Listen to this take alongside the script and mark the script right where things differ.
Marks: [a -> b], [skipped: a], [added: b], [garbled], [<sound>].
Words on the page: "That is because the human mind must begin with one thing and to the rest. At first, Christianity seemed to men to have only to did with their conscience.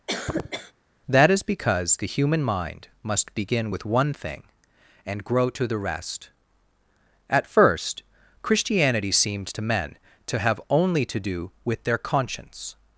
[cough] "That is because the human mind must begin with one thing and [added: grow] to the rest. At first, Christianity seemed to men to have only to [did -> do] with their conscience.